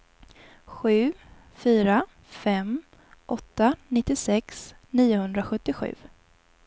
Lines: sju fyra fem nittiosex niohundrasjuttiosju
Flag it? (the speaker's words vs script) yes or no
yes